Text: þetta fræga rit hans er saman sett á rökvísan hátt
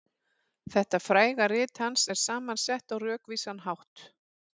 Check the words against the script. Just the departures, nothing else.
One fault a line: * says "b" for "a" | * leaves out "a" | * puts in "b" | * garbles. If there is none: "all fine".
all fine